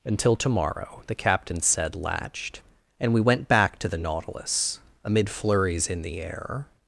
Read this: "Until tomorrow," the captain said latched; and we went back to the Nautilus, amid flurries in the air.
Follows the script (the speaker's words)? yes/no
yes